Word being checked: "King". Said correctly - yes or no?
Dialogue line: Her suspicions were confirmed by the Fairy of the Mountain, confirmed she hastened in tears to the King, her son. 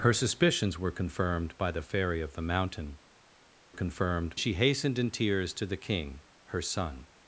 yes